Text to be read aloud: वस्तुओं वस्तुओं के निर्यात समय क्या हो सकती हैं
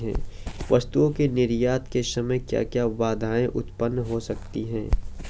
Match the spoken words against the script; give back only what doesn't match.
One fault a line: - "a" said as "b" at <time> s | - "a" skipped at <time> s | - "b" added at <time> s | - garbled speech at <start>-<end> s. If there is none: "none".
- "वस्तुओं" skipped at 1.1 s
- "के" added at 1.9 s
- "क्या बाधाएं उत्पन्न" added at 2.6 s